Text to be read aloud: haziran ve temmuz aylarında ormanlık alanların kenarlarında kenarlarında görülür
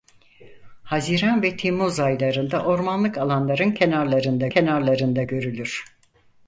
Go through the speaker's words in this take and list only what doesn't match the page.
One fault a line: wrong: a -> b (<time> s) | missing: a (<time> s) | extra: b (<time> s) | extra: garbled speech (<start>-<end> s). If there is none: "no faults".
no faults